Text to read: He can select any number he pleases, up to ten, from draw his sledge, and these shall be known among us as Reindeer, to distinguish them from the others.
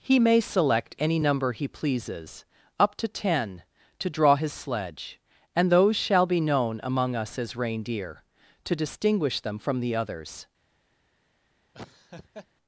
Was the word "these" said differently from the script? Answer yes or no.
yes